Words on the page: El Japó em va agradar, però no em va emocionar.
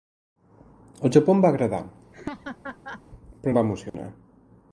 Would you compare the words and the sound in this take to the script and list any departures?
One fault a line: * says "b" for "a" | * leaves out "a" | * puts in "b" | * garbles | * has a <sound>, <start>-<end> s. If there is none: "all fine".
* has a laugh, 2.1-3.0 s
* leaves out "no"
* has a dropout, 3.9-3.9 s